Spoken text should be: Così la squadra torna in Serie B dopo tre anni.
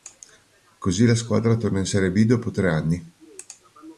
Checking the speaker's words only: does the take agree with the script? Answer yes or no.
yes